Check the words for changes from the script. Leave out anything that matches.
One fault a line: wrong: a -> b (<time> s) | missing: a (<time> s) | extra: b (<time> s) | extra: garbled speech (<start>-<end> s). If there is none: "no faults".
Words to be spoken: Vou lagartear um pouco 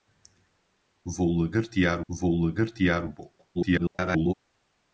extra: vou lagartear (2.1 s)
extra: garbled speech (3.5-4.3 s)